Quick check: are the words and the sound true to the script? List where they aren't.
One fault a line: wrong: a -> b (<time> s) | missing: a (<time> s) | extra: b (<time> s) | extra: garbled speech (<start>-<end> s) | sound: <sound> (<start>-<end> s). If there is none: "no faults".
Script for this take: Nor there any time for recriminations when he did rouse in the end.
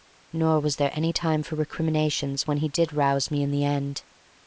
extra: was (0.6 s)
extra: me (3.3 s)